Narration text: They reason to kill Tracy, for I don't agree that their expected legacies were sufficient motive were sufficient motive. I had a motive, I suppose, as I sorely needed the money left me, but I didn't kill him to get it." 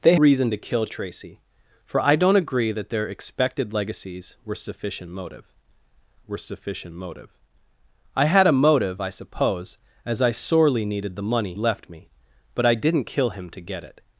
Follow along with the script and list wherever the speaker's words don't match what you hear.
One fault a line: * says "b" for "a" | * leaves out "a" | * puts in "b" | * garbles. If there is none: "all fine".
all fine